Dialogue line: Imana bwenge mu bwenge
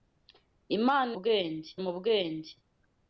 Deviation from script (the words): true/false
false